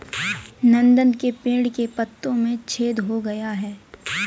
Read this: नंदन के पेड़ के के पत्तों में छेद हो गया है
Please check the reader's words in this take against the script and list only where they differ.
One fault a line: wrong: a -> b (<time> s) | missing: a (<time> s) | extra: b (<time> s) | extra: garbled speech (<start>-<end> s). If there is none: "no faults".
missing: के (1.9 s)